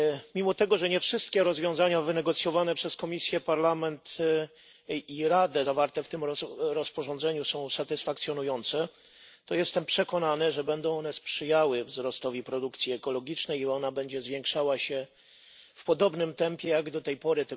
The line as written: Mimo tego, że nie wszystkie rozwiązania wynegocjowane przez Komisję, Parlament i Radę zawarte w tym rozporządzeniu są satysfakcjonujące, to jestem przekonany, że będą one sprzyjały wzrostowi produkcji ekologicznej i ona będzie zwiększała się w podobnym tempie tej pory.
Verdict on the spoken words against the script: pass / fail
fail